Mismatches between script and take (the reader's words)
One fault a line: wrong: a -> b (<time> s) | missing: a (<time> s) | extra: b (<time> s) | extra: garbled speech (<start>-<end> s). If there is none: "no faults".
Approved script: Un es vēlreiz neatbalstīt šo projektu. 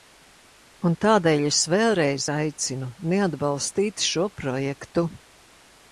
extra: tādēļ (1.1 s)
extra: aicinu (2.4 s)